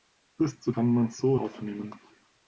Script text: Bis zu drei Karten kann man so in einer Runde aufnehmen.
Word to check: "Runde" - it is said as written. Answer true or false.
false